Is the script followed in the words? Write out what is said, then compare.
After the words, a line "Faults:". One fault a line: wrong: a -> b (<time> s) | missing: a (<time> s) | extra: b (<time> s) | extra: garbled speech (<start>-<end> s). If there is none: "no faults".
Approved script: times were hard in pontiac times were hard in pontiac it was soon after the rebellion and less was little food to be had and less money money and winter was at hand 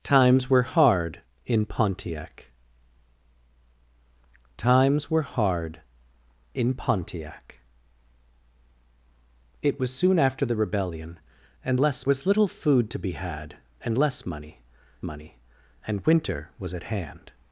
times were hard in pontiac times were hard in pontiac it was soon after the rebellion and less was little food to be had and less money money and winter was at hand
Faults:
no faults